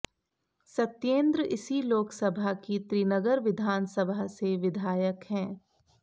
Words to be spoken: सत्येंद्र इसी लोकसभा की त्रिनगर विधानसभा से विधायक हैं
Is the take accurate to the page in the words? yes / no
yes